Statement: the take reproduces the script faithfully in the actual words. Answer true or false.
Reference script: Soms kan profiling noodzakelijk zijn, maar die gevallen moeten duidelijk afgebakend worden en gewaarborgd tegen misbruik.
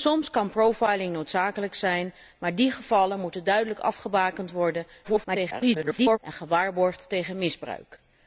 false